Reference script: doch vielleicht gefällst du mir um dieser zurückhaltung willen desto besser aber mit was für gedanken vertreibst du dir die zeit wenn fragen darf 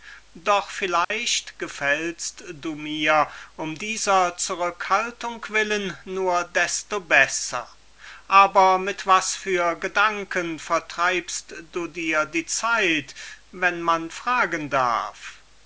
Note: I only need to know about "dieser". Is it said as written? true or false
true